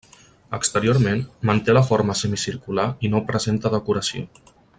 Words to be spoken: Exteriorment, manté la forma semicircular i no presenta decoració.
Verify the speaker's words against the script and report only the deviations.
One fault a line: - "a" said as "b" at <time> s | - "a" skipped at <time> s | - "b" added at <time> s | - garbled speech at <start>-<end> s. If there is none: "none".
none